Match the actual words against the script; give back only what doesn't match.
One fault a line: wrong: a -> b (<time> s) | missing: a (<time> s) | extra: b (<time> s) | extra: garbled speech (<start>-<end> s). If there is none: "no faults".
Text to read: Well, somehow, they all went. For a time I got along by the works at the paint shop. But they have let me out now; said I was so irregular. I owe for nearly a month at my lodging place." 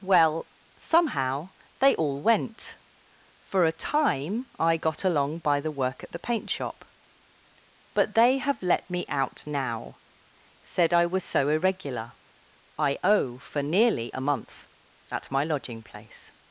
wrong: works -> work (5.7 s)